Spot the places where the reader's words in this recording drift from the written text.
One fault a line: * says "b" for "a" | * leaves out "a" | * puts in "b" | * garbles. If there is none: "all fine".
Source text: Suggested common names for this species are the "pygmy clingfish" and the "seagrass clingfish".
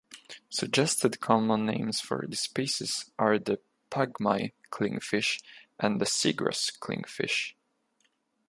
all fine